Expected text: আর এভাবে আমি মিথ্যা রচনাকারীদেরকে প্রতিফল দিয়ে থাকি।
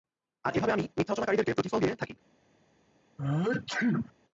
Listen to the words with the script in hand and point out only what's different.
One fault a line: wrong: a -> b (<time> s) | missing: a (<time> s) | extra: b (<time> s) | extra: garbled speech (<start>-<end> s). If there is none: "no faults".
no faults